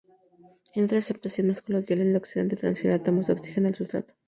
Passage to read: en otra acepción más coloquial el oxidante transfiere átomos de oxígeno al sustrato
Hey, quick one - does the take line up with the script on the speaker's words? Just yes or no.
yes